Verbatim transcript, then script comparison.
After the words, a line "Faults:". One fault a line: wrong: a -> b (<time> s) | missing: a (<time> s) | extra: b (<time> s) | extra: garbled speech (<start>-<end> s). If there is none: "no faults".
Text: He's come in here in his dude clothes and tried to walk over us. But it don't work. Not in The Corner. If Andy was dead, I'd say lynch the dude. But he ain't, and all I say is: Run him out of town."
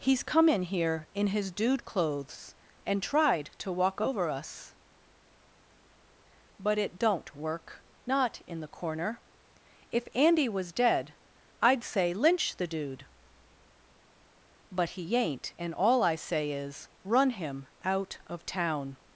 He's come in here in his dude clothes and tried to walk over us. But it don't work. Not in The Corner. If Andy was dead, I'd say lynch the dude. But he ain't, and all I say is: Run him out of town."
Faults:
no faults